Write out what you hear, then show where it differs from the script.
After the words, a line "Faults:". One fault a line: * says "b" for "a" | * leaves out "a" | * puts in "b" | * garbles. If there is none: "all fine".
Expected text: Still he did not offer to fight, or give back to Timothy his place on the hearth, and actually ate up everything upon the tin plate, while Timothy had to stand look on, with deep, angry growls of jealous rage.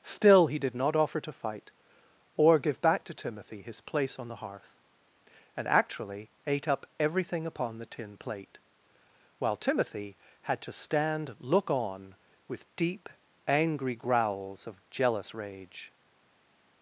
Still he did not offer to fight, or give back to Timothy his place on the hearth, and actually ate up everything upon the tin plate, while Timothy had to stand look on, with deep, angry growls of jealous rage.
Faults:
all fine